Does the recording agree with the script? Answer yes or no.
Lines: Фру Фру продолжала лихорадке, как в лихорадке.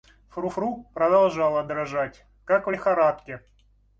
no